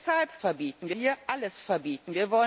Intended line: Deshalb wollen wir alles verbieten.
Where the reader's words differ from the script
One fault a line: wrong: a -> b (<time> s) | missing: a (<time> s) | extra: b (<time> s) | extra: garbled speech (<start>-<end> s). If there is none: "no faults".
wrong: wollen -> verbieten (0.4 s)